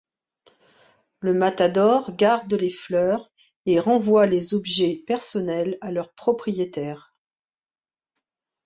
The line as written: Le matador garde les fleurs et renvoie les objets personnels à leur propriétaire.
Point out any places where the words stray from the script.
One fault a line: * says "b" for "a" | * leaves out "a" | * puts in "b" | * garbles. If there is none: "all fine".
all fine